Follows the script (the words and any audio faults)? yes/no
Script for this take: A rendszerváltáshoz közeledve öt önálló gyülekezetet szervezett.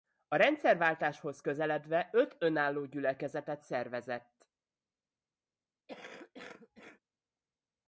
no